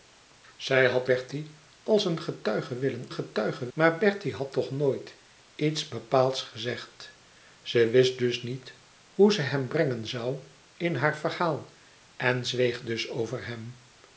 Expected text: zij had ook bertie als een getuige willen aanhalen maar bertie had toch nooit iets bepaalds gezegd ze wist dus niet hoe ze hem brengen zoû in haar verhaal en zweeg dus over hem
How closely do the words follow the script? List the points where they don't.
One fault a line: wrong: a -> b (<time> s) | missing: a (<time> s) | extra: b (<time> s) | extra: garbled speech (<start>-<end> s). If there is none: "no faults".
missing: ook (1.1 s)
wrong: aanhalen -> getuige (3.1 s)